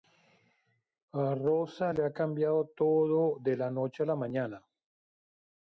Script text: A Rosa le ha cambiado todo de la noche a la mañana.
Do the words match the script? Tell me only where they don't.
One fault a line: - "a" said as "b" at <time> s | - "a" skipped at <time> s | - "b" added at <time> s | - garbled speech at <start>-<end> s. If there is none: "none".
none